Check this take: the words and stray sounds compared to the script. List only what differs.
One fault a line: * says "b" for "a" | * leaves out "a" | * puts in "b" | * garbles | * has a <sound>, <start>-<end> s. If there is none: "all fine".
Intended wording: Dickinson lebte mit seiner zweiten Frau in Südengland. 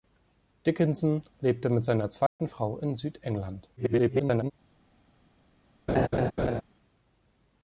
* has a dropout, 2.3-2.4 s
* garbles
* has a laugh, 5.9-6.6 s